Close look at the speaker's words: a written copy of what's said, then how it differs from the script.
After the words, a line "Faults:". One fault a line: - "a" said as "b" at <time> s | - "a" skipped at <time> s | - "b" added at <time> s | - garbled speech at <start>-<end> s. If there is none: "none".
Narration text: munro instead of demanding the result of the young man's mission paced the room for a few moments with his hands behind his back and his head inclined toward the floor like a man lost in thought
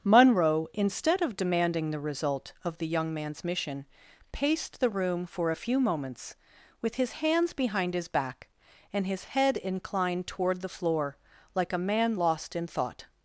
munro instead of demanding the result of the young man's mission paced the room for a few moments with his hands behind his back and his head inclined toward the floor like a man lost in thought
Faults:
none